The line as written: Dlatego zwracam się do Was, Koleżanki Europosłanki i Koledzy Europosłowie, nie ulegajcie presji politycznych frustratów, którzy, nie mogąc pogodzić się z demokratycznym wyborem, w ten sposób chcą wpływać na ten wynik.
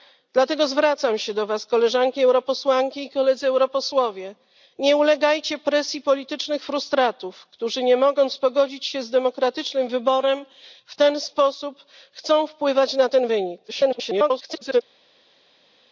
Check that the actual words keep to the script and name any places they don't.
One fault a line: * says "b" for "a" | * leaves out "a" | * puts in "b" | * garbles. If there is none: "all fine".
* garbles